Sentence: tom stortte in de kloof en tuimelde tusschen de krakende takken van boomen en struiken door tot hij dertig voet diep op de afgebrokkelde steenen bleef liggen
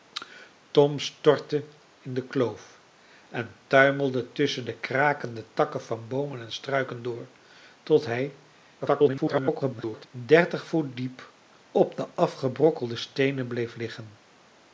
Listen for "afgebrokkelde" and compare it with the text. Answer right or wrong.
right